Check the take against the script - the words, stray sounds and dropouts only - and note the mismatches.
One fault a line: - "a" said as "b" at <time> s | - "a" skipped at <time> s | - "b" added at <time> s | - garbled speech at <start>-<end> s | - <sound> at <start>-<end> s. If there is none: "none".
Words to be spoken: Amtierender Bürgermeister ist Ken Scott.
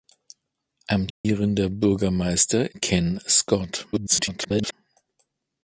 - dropout at 1.1-1.2 s
- "ist" skipped at 2.8 s
- garbled speech at 3.9-4.7 s